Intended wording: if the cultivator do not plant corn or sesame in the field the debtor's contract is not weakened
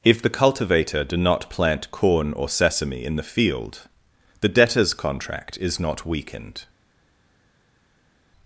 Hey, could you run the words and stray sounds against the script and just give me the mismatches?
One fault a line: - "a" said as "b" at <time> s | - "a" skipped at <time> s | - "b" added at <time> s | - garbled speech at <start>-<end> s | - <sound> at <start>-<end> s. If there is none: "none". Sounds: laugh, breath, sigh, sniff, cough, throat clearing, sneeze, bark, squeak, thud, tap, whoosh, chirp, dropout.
none